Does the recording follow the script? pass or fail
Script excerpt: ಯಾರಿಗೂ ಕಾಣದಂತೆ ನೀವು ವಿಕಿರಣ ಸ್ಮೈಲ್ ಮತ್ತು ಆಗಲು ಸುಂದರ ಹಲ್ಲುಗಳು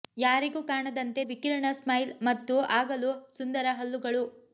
fail